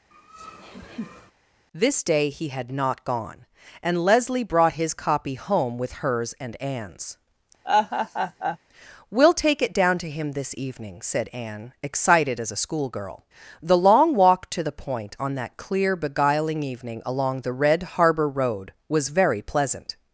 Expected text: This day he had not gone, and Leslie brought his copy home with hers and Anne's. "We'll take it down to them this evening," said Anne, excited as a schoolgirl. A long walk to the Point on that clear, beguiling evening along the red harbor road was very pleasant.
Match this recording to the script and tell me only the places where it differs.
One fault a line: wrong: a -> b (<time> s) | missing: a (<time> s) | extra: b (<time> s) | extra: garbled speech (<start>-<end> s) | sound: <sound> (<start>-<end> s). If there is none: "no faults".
sound: laugh (0.1-1.3 s)
sound: laugh (7.6-8.6 s)
wrong: them -> him (10.1 s)
wrong: A -> The (13.6 s)